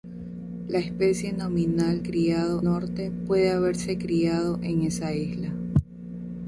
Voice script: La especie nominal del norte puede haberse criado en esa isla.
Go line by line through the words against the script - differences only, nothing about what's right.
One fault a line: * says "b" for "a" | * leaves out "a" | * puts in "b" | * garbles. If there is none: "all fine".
* says "criado" for "del"